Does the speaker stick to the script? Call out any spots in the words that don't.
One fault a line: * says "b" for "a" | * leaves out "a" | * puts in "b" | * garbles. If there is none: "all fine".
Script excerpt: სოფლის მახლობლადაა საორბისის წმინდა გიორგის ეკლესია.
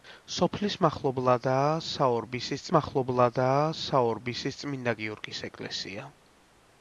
* puts in "მახლობლადაა საორბისის"